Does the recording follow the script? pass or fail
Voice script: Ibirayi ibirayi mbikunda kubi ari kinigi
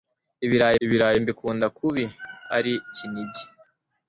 pass